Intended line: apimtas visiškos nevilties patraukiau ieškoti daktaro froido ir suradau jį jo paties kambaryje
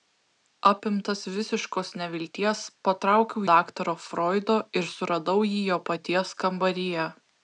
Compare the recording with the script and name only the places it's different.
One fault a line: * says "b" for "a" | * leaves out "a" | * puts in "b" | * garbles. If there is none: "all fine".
* leaves out "ieškoti"